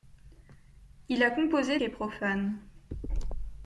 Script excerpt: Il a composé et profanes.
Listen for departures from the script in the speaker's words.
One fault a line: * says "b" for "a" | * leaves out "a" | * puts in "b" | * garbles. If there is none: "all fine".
all fine